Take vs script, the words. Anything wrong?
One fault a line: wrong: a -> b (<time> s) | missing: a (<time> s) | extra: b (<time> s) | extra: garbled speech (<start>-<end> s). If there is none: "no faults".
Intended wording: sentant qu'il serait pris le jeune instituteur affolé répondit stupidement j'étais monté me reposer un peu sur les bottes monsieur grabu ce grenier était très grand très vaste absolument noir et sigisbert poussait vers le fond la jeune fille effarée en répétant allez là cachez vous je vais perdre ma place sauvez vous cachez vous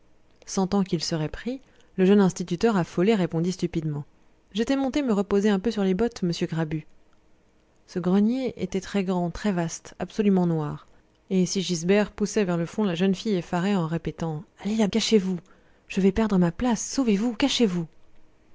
no faults